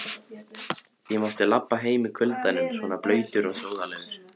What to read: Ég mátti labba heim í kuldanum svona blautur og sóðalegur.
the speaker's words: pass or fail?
pass